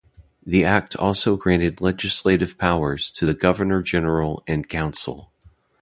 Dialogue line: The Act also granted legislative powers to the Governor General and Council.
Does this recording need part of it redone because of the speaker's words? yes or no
no